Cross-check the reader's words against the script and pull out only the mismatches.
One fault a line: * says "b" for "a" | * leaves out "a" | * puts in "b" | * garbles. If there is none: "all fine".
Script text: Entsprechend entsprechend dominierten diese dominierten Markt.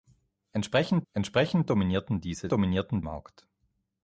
all fine